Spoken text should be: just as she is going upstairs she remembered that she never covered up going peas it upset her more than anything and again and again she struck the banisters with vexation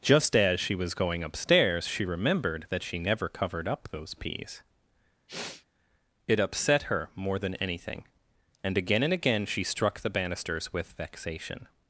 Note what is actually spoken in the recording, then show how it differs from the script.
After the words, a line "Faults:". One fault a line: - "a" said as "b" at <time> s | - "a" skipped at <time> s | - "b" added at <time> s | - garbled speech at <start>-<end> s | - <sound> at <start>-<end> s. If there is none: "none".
just as she was going upstairs she remembered that she never covered up those peas it upset her more than anything and again and again she struck the banisters with vexation
Faults:
- "is" said as "was" at 0.7 s
- "going" said as "those" at 3.9 s
- sniff at 5.3-5.7 s